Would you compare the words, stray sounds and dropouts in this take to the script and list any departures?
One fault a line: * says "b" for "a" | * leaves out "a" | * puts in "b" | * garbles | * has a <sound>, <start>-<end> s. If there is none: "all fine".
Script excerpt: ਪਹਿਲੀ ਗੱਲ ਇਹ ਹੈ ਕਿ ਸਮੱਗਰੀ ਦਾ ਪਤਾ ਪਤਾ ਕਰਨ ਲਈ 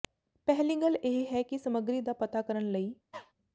* leaves out "ਪਤਾ"
* has a cough, 3.1-3.3 s